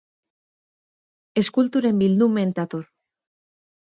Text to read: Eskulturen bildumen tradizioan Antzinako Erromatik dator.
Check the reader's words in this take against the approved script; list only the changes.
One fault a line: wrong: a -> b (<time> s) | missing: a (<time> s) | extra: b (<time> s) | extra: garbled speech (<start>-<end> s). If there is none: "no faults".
missing: tradizioan Antzinako Erromatik (2.5 s)